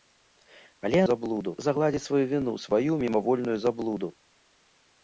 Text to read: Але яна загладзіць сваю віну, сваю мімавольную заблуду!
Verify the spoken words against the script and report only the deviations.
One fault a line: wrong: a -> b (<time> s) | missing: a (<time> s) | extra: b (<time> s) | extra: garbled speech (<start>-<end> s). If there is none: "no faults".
wrong: яна -> заблуду (1.1 s)